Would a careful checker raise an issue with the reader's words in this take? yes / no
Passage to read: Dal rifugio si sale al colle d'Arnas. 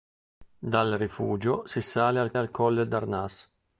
yes